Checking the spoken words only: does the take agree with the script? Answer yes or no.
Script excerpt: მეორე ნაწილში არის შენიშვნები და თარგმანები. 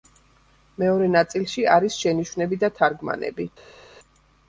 yes